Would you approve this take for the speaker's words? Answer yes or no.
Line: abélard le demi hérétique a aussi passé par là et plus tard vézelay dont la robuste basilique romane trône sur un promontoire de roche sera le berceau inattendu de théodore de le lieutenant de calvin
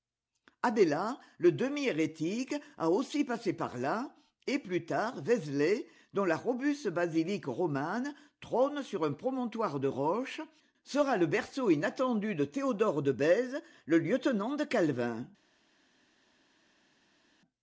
no